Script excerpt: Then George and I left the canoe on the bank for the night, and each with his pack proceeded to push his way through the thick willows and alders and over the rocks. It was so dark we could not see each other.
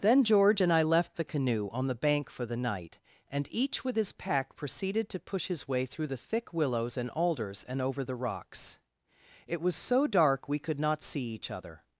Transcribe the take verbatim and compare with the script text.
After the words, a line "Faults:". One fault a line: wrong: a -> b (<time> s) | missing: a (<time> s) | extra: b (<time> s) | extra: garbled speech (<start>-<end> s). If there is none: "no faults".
Then George and I left the canoe on the bank for the night, and each with his pack proceeded to push his way through the thick willows and alders and over the rocks. It was so dark we could not see each other.
Faults:
no faults